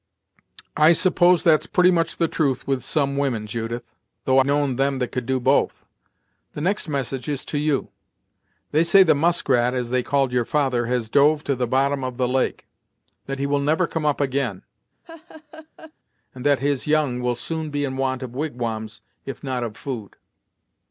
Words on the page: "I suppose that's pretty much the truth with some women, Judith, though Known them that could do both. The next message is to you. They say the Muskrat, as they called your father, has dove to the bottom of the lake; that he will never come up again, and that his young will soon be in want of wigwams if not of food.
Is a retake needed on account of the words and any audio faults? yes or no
yes